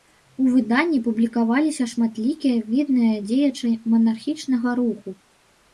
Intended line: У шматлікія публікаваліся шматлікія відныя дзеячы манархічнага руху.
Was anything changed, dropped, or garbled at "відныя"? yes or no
no